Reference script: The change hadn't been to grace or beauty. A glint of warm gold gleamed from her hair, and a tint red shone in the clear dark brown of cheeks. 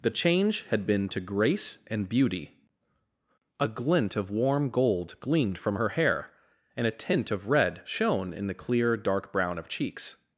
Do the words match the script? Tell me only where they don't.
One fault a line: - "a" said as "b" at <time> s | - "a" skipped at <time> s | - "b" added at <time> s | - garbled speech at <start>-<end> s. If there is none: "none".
- "hadn't" said as "had" at 0.6 s
- "or" said as "and" at 1.9 s
- "of" added at 7.3 s